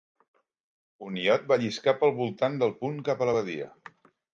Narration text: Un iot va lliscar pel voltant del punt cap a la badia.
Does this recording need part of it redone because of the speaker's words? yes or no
no